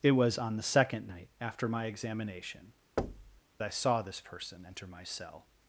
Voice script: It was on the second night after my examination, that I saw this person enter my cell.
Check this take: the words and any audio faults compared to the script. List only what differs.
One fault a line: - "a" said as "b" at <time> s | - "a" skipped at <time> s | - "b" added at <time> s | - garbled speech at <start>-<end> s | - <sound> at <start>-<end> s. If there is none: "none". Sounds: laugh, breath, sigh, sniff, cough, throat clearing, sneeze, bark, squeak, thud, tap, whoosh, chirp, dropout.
- "that" skipped at 2.7 s
- thud at 3.0-3.4 s